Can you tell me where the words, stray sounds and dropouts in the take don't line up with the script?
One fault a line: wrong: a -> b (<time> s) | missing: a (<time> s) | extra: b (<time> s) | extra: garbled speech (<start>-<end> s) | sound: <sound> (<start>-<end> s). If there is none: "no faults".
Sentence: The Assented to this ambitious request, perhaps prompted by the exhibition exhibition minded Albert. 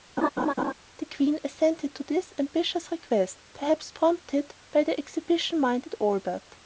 sound: laugh (0.2-0.7 s)
extra: Queen (1.0 s)
missing: exhibition (5.6 s)